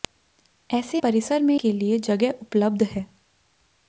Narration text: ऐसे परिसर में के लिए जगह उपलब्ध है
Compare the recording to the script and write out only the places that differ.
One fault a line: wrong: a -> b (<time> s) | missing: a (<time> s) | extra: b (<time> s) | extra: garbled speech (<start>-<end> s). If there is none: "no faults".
no faults